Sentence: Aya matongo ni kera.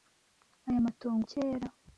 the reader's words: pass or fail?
fail